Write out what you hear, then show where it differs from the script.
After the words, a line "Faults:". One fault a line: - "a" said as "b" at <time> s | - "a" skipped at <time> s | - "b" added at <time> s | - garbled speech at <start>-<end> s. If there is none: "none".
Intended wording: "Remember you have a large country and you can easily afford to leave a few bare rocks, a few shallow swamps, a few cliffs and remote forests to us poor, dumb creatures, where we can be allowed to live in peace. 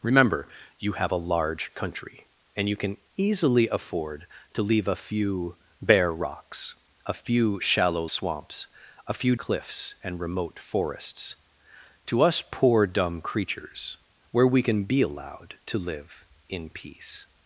"Remember you have a large country and you can easily afford to leave a few bare rocks, a few shallow swamps, a few cliffs and remote forests to us poor, dumb creatures, where we can be allowed to live in peace.
Faults:
none